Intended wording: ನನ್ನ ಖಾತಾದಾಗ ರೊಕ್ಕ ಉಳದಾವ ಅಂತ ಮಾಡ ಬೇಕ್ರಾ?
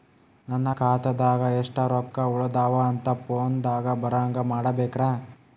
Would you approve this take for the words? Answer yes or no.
no